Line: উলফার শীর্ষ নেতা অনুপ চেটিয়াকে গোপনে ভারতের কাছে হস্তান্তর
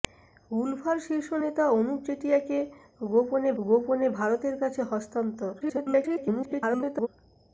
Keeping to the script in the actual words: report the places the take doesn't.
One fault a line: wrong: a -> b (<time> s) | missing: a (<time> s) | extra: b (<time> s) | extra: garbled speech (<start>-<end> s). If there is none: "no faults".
extra: গোপনে (3.6 s)
extra: garbled speech (5.6-7.1 s)